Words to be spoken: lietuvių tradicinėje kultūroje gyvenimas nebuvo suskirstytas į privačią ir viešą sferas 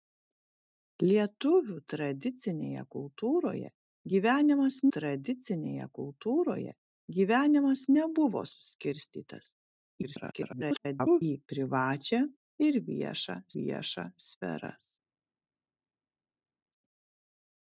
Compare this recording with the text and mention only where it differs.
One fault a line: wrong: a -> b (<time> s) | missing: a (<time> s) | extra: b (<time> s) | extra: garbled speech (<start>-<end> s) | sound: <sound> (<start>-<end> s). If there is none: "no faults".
extra: tradicinėje kultūroje gyvenimas (5.0 s)
extra: garbled speech (10.0-11.2 s)
extra: viešą (13.6 s)